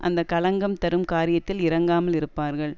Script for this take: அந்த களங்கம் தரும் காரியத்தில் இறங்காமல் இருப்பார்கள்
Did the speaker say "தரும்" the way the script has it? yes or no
yes